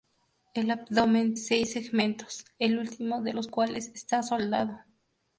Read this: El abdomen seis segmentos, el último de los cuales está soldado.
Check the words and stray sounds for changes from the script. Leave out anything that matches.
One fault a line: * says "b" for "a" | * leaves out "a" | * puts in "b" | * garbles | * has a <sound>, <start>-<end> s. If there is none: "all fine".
all fine